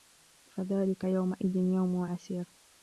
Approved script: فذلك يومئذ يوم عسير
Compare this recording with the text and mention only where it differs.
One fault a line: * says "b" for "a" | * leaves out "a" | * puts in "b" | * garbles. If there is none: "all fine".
all fine